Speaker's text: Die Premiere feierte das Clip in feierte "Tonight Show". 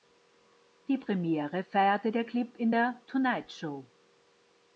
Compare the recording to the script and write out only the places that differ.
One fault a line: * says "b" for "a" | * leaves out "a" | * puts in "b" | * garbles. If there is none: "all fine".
* says "der" for "das"
* says "der" for "feierte"